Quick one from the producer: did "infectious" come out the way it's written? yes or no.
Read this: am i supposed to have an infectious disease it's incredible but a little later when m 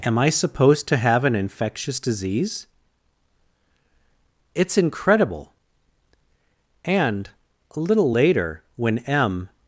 yes